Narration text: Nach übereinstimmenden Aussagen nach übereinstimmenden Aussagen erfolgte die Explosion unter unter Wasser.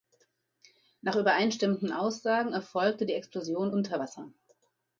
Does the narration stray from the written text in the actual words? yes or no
yes